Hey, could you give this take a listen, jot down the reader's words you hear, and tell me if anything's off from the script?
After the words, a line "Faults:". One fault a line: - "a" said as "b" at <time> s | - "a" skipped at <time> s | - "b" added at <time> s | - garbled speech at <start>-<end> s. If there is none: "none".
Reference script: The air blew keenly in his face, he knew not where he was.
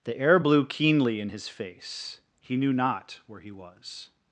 The air blew keenly in his face, he knew not where he was.
Faults:
none